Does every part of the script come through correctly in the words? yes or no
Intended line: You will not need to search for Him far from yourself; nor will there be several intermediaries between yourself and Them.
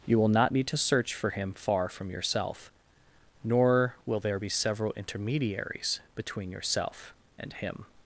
no